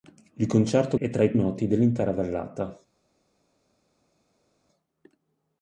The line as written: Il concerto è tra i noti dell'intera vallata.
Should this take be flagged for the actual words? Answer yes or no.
no